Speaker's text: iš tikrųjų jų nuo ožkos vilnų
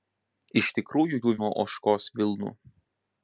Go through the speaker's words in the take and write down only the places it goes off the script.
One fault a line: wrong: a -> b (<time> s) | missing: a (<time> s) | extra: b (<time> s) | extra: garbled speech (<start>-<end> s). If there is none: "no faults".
no faults